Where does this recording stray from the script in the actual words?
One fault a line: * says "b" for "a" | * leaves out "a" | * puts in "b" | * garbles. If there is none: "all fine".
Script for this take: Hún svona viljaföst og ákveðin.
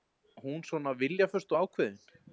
all fine